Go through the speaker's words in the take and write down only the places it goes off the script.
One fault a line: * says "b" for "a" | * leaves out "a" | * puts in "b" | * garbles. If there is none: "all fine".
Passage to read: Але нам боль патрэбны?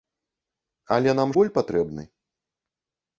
all fine